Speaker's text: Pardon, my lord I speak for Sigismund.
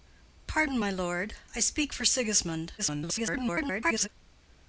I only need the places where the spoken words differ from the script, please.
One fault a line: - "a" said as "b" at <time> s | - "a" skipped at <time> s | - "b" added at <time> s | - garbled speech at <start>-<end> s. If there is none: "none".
- garbled speech at 2.8-4.1 s